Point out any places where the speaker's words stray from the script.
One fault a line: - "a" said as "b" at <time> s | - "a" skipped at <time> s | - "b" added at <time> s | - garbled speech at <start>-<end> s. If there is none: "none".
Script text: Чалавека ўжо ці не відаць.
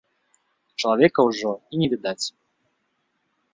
- "ці" said as "і" at 1.7 s